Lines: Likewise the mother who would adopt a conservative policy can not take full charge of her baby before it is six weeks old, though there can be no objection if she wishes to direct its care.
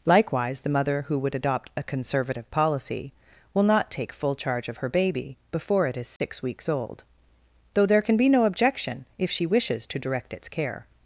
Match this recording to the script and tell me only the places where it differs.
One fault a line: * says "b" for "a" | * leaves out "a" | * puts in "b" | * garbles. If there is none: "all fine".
* says "will" for "can"